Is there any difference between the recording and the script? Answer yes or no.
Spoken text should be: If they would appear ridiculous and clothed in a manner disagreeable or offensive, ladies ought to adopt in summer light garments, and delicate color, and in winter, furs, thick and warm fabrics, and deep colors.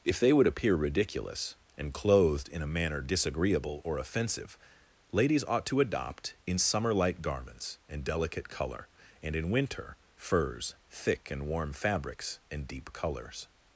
no